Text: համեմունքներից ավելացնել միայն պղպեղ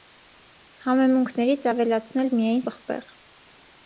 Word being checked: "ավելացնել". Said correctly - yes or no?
yes